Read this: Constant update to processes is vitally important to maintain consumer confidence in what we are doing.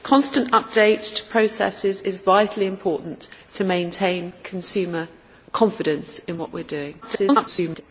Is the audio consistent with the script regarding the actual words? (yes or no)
no